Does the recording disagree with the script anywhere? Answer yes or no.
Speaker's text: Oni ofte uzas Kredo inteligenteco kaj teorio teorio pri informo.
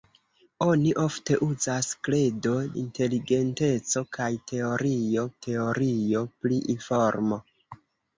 no